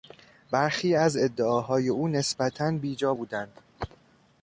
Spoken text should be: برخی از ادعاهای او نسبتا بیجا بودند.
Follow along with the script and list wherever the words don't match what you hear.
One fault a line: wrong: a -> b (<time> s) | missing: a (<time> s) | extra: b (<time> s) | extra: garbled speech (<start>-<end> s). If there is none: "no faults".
no faults